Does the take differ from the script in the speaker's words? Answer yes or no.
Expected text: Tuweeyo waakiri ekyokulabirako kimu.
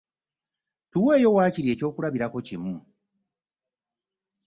no